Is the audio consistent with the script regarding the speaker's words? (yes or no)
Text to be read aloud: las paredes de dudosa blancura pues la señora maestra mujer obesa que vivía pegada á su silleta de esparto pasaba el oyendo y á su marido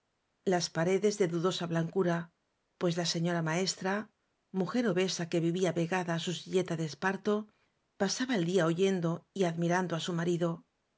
no